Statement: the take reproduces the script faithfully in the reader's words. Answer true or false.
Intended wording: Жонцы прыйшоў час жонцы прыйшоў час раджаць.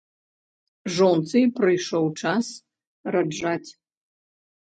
false